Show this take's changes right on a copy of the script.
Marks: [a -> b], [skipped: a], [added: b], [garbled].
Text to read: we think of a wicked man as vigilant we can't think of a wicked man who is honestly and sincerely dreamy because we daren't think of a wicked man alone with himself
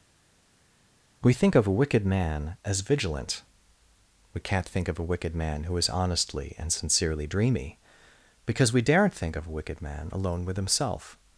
we think of a wicked man as vigilant we can't think of a wicked man who is honestly and sincerely dreamy because we daren't think of a wicked man alone with himself